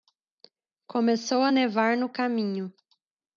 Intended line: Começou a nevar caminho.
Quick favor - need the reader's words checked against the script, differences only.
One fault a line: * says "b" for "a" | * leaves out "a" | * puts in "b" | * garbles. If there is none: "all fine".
* puts in "no"